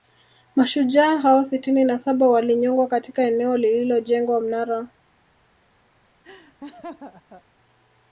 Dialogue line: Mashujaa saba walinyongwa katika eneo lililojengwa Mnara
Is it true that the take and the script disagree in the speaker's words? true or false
true